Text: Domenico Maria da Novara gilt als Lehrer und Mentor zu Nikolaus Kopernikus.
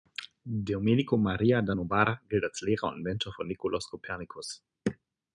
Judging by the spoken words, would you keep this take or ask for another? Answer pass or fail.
fail